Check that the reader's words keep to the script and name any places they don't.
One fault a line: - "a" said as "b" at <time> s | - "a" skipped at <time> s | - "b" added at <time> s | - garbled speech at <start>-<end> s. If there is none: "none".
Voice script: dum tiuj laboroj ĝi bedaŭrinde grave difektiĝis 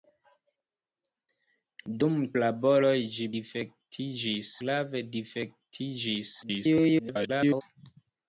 - "tiuj" skipped at 2.1 s
- "bedaŭrinde" said as "difektiĝis" at 3.4 s
- garbled speech at 6.4-7.6 s